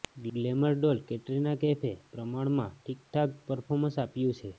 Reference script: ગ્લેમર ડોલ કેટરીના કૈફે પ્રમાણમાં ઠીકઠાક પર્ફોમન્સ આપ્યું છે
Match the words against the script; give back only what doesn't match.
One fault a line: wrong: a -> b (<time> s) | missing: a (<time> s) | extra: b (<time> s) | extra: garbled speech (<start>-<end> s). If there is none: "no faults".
no faults